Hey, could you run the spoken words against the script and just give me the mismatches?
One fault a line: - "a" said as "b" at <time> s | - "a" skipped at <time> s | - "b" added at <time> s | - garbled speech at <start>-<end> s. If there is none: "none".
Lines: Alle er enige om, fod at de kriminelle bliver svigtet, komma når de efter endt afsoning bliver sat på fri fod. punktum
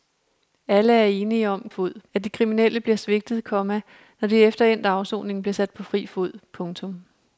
none